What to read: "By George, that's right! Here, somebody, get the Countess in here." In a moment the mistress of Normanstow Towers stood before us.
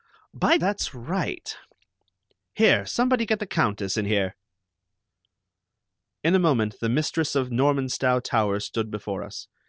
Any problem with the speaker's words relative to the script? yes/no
yes